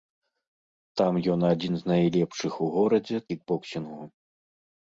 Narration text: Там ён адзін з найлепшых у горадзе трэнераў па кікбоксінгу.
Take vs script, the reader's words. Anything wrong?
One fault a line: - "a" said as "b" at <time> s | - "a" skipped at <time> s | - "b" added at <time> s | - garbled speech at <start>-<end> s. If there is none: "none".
- "трэнераў па" skipped at 3.2 s